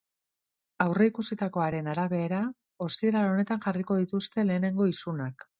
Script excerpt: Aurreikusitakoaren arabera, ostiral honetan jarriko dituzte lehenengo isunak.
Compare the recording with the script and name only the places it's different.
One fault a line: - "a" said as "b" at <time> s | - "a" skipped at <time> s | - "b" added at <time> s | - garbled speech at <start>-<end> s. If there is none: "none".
none